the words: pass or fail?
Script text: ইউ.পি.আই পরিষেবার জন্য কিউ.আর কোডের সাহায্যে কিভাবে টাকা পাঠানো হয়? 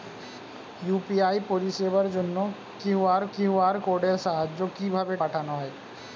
fail